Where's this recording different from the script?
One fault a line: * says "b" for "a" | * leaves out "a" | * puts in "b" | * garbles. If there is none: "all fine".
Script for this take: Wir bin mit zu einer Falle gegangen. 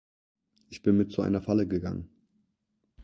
* says "Ich" for "Wir"